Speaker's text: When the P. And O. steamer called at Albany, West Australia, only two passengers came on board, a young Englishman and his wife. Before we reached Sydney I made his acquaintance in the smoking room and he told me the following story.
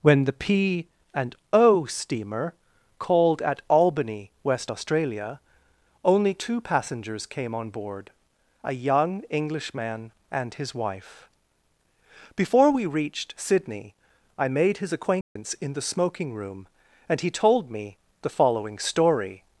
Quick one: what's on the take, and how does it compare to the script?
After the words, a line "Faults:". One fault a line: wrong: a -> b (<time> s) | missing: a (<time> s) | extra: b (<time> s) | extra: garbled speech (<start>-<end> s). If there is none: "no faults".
When the P. And O. steamer called at Albany, West Australia, only two passengers came on board, a young Englishman and his wife. Before we reached Sydney I made his acquaintance in the smoking room and he told me the following story.
Faults:
no faults